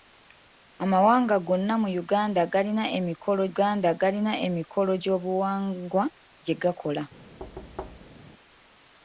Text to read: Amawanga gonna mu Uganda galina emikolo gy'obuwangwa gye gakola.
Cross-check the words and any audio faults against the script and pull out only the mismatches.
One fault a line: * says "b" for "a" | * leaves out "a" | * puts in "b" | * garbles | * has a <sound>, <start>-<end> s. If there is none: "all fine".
* puts in "Uganda galina emikolo"
* has a thud, 7.4-8.2 s